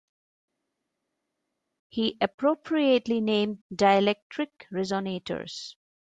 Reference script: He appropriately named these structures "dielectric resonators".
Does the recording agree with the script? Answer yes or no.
no